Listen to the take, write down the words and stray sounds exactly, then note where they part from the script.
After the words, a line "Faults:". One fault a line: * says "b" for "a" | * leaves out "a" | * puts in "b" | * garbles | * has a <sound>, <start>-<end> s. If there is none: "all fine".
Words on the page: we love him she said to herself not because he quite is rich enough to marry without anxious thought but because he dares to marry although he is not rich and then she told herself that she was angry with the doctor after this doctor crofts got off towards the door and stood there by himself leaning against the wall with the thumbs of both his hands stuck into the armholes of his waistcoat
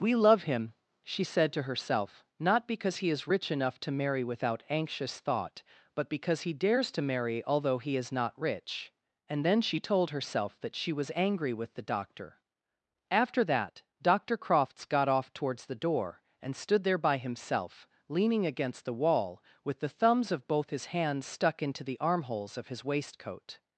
we love him she said to herself not because he is rich enough to marry without anxious thought but because he dares to marry although he is not rich and then she told herself that she was angry with the doctor after that doctor crofts got off towards the door and stood there by himself leaning against the wall with the thumbs of both his hands stuck into the armholes of his waistcoat
Faults:
* leaves out "quite"
* says "that" for "this"